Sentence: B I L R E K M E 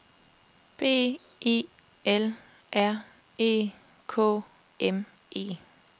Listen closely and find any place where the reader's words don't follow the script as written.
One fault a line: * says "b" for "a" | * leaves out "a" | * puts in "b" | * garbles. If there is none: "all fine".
all fine